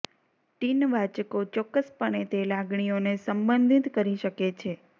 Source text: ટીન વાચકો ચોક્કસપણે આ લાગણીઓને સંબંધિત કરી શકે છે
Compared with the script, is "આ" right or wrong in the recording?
wrong